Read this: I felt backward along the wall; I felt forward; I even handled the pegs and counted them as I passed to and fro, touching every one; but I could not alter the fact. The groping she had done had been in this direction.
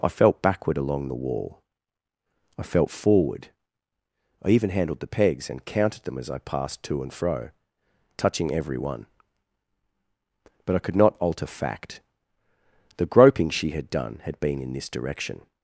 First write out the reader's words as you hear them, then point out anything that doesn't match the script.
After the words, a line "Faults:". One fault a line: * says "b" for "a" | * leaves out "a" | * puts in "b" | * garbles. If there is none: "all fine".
I felt backward along the wall; I felt forward; I even handled the pegs and counted them as I passed to and fro, touching every one; but I could not alter fact. The groping she had done had been in this direction.
Faults:
* leaves out "the"